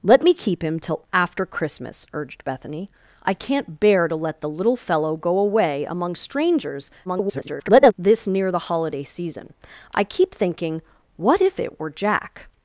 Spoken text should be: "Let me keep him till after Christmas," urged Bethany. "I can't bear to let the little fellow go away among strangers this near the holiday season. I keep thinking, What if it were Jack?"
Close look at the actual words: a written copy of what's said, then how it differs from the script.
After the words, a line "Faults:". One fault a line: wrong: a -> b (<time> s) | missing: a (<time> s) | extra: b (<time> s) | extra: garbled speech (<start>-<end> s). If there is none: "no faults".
"Let me keep him till after Christmas," urged Bethany. "I can't bear to let the little fellow go away among strangers [garbled] this near the holiday season. I keep thinking, What if it were Jack?"
Faults:
extra: garbled speech (7.0-7.9 s)